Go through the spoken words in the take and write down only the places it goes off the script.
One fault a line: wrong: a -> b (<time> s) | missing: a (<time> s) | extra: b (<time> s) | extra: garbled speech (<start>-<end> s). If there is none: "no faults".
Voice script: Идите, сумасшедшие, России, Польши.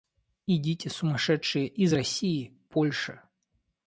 extra: из (1.7 s)